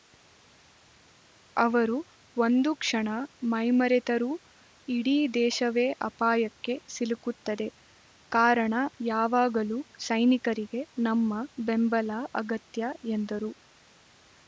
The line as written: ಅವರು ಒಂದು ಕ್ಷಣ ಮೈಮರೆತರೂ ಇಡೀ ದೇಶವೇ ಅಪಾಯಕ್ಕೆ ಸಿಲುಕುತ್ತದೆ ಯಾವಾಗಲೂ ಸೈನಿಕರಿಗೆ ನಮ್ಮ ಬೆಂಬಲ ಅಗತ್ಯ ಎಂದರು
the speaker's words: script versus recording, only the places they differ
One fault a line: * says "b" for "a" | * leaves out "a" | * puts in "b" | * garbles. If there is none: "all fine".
* puts in "ಕಾರಣ"